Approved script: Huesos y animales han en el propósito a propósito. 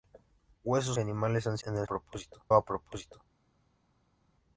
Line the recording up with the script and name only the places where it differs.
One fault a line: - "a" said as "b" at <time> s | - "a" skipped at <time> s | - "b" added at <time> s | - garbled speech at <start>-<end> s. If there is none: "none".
none